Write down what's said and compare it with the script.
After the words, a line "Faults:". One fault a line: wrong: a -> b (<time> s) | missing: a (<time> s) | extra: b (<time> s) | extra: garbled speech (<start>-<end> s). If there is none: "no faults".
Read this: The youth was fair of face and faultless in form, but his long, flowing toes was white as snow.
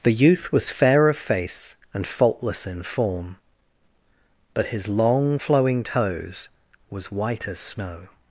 The youth was fair of face and faultless in form, but his long, flowing toes was white as snow.
Faults:
no faults